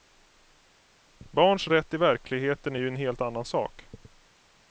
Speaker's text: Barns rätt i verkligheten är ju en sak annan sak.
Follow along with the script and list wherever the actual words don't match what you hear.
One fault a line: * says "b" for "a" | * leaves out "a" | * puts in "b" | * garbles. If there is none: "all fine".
* says "helt" for "sak"